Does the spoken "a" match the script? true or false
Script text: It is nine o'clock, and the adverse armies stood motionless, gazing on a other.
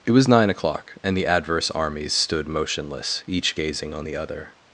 false